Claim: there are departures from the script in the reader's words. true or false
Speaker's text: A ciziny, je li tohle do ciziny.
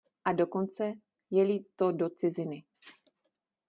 true